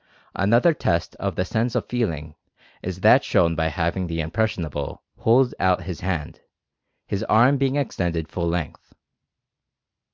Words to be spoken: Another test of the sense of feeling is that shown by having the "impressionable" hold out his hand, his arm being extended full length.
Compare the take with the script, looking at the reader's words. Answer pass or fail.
pass